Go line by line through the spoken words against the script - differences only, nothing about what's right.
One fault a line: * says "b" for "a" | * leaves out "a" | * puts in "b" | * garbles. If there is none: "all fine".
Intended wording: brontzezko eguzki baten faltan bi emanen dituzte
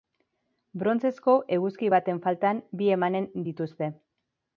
all fine